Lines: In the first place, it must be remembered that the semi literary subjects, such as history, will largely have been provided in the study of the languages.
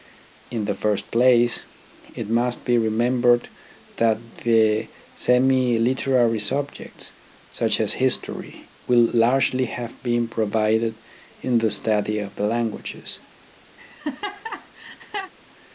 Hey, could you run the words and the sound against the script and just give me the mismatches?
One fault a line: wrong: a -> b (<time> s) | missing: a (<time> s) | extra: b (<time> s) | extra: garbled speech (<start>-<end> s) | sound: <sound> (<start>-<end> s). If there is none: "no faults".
sound: laugh (13.8-15.3 s)